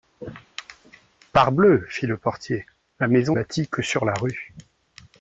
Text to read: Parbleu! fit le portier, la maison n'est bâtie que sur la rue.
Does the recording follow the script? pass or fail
fail